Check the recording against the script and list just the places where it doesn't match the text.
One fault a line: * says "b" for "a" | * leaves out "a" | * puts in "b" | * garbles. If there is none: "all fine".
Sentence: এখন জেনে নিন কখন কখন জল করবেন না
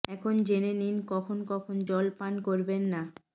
* puts in "পান"